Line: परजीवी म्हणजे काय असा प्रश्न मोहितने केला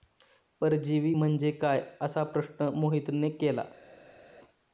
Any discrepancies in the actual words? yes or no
no